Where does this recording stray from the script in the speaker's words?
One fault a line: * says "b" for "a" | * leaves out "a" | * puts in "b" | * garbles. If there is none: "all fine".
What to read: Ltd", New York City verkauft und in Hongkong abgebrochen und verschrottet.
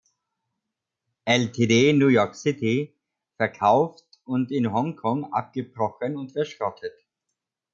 all fine